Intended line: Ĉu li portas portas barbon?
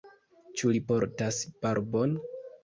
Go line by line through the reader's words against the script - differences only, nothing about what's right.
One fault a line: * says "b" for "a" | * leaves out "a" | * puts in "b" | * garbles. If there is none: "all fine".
* leaves out "portas"